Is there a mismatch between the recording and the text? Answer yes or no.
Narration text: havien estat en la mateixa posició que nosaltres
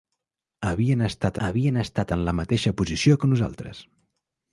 yes